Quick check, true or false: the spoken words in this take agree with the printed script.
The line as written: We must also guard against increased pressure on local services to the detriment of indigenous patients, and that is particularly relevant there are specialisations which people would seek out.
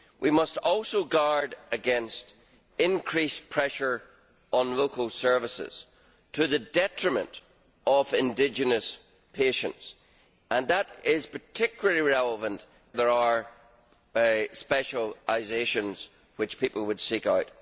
true